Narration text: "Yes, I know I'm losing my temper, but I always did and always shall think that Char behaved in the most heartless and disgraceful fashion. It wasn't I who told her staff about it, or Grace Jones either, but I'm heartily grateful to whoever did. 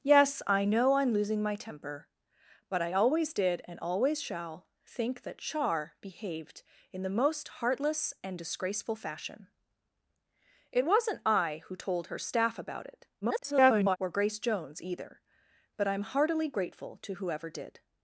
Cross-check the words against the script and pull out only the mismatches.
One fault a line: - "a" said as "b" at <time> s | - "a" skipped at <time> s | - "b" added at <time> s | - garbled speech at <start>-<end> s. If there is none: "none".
- garbled speech at 13.2-14.0 s